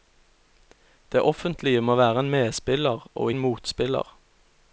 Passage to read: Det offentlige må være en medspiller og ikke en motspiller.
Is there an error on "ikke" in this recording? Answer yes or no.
yes